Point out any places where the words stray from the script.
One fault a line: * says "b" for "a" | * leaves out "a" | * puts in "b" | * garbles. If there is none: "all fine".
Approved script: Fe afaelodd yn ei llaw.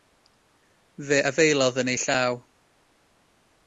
all fine